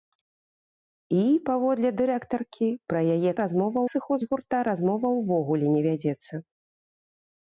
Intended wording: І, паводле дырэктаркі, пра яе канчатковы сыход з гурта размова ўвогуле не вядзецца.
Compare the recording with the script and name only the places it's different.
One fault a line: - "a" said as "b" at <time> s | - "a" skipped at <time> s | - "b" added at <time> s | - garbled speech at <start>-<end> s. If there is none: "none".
- "канчатковы" said as "размова" at 3.4 s